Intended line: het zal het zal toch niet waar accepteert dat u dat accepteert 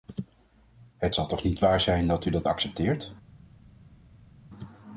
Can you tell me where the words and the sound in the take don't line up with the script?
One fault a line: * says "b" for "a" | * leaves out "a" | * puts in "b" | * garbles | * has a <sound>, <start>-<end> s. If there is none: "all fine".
* leaves out "het zal"
* says "zijn" for "accepteert"